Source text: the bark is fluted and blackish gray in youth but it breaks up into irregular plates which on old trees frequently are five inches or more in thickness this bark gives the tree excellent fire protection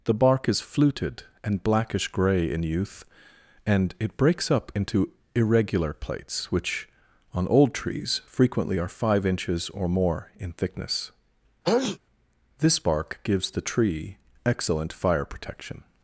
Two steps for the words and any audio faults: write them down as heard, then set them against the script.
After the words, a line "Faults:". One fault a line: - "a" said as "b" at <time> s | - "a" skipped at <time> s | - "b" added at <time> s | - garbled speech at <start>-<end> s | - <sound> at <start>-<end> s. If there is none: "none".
the bark is fluted and blackish gray in youth and it breaks up into irregular plates which on old trees frequently are five inches or more in thickness this bark gives the tree excellent fire protection
Faults:
- "but" said as "and" at 3.7 s
- sneeze at 11.6-12.0 s